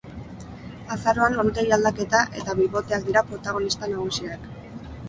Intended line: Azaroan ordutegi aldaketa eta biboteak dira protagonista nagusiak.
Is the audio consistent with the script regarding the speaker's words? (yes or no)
yes